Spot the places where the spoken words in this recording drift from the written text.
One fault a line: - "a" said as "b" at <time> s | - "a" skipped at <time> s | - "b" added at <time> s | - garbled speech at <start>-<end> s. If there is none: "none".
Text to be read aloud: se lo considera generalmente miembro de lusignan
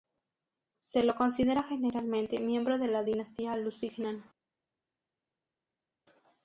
- "la dinastía" added at 2.9 s